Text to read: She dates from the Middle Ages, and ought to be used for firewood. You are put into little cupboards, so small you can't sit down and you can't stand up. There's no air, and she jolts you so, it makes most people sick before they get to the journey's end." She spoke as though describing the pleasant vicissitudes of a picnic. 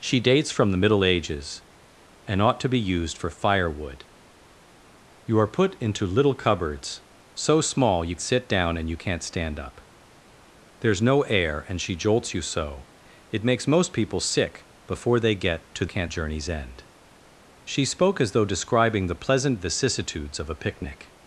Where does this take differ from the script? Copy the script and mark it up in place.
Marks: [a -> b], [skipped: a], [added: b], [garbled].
She dates from the Middle Ages, and ought to be used for firewood. You are put into little cupboards, so small you [skipped: can't] sit down and you can't stand up. There's no air, and she jolts you so, it makes most people sick before they get to [the -> can't] journey's end." She spoke as though describing the pleasant vicissitudes of a picnic.